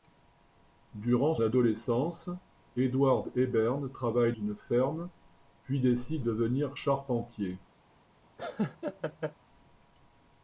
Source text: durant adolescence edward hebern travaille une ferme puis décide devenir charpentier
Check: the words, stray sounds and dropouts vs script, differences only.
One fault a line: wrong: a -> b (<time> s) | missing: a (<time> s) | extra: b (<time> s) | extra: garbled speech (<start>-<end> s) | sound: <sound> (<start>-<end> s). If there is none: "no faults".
sound: laugh (8.4-9.3 s)